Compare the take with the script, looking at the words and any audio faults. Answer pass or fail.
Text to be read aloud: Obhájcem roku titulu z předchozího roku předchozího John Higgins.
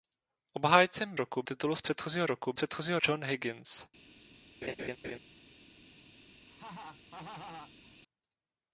fail